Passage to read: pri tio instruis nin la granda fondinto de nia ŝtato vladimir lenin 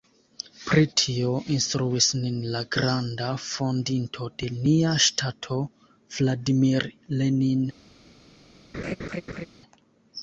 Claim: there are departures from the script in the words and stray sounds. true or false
true